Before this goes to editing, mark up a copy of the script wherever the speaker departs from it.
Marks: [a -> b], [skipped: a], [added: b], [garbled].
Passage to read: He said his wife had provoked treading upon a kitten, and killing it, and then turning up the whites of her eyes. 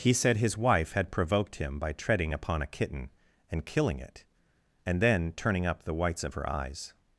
He said his wife had provoked [added: him by] treading upon a kitten, and killing it, and then turning up the whites of her eyes.